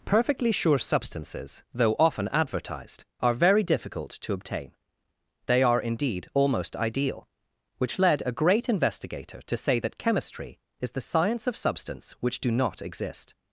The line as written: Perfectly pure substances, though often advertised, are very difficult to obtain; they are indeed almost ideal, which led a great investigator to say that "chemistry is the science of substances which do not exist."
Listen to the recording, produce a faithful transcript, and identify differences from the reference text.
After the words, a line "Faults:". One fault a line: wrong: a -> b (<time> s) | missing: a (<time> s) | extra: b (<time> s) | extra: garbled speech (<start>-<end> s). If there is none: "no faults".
Perfectly sure substances, though often advertised, are very difficult to obtain; they are indeed almost ideal, which led a great investigator to say that "chemistry is the science of substance which do not exist."
Faults:
wrong: pure -> sure (0.5 s)
wrong: substances -> substance (11.6 s)